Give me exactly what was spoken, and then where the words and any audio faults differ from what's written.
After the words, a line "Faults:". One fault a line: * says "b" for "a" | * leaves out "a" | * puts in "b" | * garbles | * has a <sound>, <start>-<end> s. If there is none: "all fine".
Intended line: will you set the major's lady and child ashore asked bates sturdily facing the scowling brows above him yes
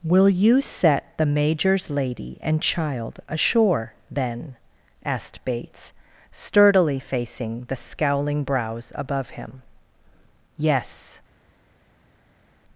will you set the major's lady and child ashore then asked bates sturdily facing the scowling brows above him yes
Faults:
* puts in "then"